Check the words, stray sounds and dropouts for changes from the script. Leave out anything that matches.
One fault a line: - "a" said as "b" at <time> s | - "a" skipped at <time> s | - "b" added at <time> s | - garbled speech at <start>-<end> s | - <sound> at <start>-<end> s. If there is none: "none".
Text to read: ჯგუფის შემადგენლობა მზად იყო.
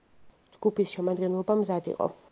none